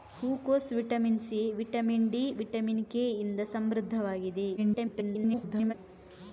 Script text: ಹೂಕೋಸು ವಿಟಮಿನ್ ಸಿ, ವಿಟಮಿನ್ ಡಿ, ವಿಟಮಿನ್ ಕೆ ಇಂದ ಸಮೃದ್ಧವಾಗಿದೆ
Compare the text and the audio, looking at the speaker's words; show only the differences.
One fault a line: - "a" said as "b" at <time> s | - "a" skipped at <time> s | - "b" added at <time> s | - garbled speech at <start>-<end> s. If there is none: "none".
- garbled speech at 4.6-5.7 s